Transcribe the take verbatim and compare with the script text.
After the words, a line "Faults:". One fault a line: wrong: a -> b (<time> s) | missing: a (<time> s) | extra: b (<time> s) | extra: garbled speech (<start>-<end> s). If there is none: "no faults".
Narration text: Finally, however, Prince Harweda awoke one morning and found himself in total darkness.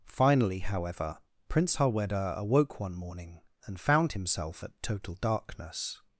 Finally, however, Prince Harweda awoke one morning and found himself at total darkness.
Faults:
wrong: in -> at (4.6 s)